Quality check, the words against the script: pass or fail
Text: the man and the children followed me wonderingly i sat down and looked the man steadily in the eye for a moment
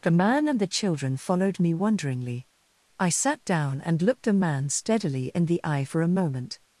pass